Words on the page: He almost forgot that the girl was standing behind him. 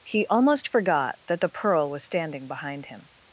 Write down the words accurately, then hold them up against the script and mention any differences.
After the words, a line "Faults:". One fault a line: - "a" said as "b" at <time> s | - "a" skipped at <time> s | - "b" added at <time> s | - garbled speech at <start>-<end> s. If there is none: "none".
He almost forgot that the pearl was standing behind him.
Faults:
- "girl" said as "pearl" at 1.5 s